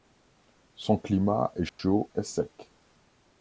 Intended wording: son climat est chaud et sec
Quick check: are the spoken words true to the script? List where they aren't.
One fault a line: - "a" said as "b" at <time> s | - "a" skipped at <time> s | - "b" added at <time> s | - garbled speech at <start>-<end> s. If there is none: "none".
none